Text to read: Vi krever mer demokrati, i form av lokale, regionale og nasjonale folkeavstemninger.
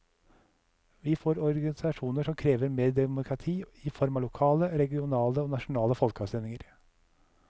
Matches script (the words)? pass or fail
fail